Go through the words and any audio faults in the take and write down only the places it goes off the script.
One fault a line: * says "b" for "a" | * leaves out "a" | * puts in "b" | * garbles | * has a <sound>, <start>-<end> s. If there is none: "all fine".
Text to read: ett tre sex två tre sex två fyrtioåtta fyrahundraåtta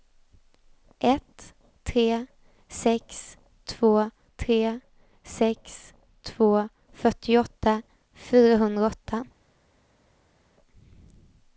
all fine